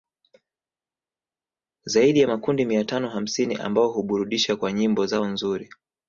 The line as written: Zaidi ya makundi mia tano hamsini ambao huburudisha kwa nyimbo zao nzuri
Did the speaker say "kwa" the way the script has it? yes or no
yes